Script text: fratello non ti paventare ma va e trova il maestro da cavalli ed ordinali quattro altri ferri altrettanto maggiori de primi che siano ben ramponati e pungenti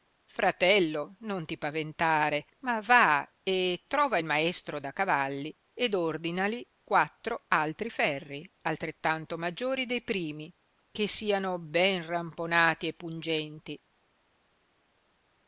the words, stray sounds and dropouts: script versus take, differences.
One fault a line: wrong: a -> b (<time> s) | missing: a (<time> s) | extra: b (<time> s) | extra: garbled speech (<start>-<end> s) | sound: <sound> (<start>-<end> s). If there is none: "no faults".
no faults